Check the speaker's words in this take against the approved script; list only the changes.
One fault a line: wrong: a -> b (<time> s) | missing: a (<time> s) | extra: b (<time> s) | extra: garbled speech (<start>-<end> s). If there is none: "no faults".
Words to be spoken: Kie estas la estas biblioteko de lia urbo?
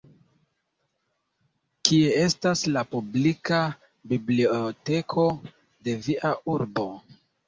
wrong: estas -> publika (3.0 s)
wrong: lia -> via (6.1 s)